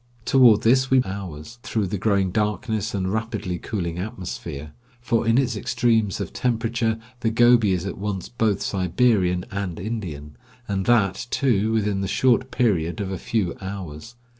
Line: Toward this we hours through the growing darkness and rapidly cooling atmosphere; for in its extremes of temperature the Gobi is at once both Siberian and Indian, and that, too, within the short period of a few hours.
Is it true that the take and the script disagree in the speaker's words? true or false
false